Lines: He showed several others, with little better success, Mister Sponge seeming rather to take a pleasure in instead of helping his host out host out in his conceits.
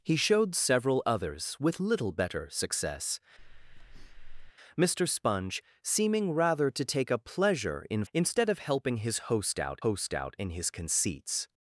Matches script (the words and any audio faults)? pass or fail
fail